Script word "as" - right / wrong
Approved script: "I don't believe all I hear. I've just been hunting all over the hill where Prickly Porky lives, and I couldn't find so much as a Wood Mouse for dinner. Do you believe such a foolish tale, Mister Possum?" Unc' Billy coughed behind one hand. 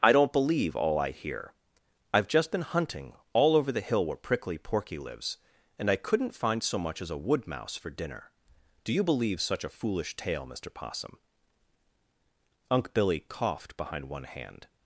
right